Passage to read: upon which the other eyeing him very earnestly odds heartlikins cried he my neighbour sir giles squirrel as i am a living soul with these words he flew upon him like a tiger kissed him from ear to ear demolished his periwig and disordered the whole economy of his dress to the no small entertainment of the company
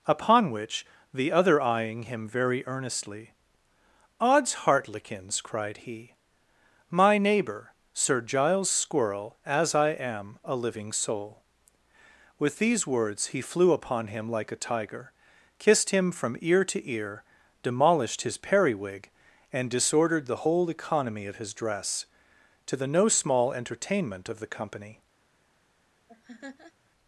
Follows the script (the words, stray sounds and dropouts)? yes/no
no